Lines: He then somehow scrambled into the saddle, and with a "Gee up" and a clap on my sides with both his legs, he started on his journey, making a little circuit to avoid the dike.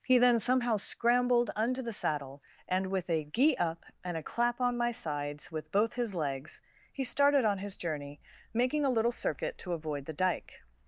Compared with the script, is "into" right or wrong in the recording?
wrong